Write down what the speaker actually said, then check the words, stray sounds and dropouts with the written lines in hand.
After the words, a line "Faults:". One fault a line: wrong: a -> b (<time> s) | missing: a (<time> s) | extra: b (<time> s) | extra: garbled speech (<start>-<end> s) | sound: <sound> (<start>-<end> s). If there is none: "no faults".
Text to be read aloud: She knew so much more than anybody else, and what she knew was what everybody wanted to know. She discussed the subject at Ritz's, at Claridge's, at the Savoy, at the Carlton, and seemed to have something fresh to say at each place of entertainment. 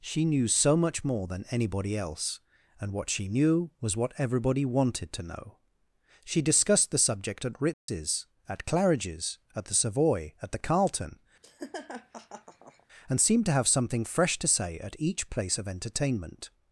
She knew so much more than anybody else, and what she knew was what everybody wanted to know. She discussed the subject at Ritz's, at Claridge's, at the Savoy, at the Carlton, and seemed to have something fresh to say at each place of entertainment.
Faults:
sound: dropout (7.7-7.9 s)
sound: laugh (11.4-12.9 s)